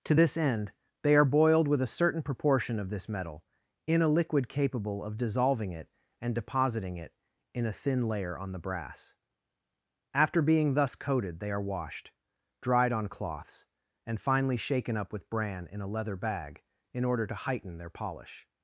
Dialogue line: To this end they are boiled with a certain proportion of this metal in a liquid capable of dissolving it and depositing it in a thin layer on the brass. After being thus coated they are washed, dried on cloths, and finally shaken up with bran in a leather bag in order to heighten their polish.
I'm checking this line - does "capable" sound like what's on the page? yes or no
yes